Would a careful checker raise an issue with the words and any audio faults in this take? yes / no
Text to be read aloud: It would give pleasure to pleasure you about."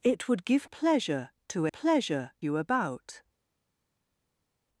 no